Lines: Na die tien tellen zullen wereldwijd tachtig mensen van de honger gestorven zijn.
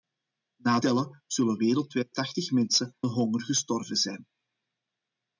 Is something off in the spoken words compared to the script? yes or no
yes